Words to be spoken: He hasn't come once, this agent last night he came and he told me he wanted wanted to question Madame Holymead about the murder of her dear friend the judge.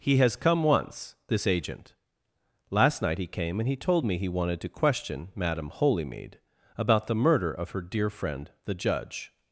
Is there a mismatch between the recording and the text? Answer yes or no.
yes